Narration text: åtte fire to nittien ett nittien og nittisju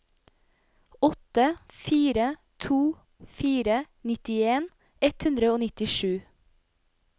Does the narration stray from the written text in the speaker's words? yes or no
yes